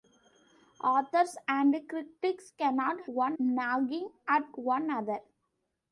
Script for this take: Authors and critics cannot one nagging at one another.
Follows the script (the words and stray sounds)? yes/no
yes